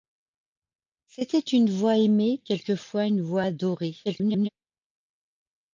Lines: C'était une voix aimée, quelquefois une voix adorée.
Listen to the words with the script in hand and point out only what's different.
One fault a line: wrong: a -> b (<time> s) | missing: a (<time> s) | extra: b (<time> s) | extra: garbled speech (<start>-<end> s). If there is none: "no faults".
extra: garbled speech (4.0-4.5 s)